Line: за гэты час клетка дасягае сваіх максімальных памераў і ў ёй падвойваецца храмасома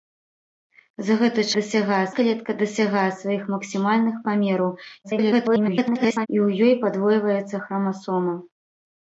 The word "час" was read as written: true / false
false